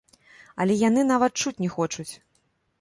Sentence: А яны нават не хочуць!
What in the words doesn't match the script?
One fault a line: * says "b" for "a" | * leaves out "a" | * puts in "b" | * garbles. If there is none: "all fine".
* says "Але" for "А"
* puts in "чуць"